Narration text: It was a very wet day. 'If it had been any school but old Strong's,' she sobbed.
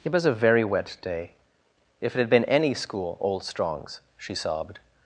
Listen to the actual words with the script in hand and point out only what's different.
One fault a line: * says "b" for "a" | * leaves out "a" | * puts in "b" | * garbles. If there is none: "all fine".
* leaves out "but"